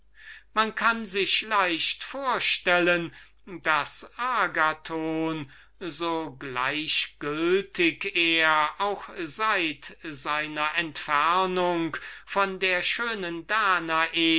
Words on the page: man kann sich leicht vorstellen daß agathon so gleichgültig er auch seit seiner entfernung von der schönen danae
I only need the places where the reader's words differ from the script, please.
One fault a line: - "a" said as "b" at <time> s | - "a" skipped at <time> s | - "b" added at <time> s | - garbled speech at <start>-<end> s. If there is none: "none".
none